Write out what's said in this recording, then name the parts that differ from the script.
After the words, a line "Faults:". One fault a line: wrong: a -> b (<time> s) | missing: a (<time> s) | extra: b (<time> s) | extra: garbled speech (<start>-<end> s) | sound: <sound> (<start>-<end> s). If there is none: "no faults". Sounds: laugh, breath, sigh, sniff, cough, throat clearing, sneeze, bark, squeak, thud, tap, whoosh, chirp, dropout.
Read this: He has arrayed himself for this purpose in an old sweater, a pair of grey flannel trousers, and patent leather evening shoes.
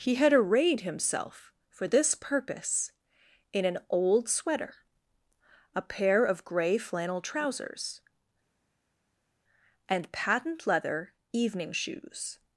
He had arrayed himself for this purpose in an old sweater, a pair of grey flannel trousers, and patent leather evening shoes.
Faults:
wrong: has -> had (0.1 s)